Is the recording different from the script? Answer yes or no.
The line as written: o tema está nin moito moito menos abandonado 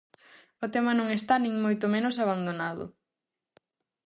yes